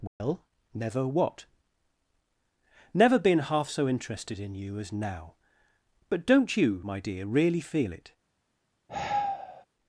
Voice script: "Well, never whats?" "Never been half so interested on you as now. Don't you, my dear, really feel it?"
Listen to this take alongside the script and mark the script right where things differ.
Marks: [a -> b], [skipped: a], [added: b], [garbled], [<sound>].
"Well, [dropout] never [whats?" -> what] "Never been half so interested [on -> in] you as now. [added: But] Don't you, my dear, really feel it?" [sigh]